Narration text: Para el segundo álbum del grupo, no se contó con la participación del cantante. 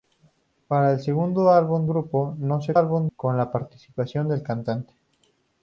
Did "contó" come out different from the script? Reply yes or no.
yes